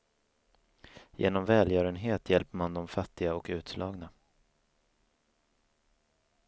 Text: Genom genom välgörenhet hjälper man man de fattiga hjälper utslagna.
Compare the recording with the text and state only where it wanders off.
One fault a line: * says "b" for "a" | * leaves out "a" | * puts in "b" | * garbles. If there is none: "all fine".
* leaves out "genom"
* leaves out "man"
* says "och" for "hjälper"